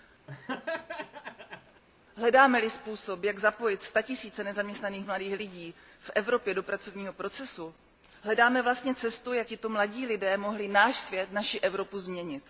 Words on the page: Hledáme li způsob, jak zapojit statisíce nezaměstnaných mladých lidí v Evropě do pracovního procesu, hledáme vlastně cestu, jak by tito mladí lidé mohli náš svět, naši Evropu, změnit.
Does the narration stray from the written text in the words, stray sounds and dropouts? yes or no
yes